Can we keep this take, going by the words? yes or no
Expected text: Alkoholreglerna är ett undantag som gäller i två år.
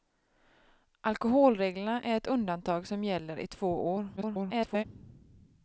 no